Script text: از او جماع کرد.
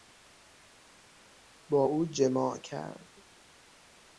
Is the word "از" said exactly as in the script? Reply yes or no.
no